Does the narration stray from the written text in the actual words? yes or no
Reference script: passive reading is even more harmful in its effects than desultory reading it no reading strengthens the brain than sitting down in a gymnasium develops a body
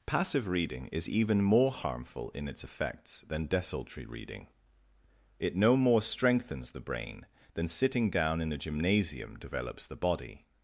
yes